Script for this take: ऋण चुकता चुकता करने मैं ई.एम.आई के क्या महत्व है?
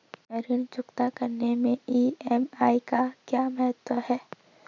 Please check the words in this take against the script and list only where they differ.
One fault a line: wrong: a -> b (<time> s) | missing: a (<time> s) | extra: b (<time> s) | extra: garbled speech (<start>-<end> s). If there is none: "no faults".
missing: चुकता (1.1 s)
wrong: के -> का (2.9 s)